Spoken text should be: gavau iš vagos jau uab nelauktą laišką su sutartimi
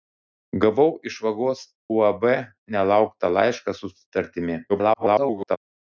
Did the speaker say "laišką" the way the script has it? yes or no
yes